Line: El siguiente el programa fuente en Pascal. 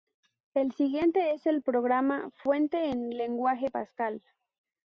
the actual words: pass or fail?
fail